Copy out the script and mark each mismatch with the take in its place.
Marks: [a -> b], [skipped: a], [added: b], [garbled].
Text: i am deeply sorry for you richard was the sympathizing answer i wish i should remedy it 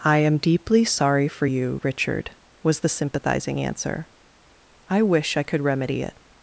i am deeply sorry for you richard was the sympathizing answer i wish i [should -> could] remedy it